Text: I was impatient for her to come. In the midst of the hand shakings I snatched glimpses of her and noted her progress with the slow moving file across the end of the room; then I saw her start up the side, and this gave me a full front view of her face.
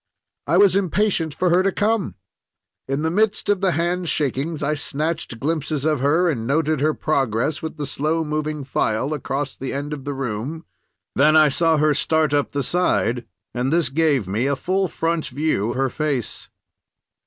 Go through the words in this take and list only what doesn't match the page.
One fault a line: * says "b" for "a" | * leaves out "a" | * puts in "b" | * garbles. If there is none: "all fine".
* leaves out "of"